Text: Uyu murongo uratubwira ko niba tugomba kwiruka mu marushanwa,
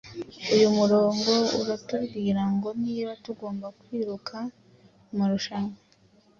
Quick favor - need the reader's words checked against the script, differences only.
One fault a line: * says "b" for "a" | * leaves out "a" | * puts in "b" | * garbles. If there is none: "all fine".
* says "ngo" for "ko"